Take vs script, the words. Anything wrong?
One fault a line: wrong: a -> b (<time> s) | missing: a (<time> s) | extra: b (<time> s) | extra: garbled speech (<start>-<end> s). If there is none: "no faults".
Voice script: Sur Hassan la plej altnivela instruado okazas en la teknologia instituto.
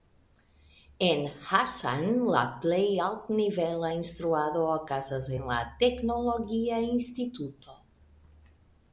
wrong: Sur -> En (1.1 s)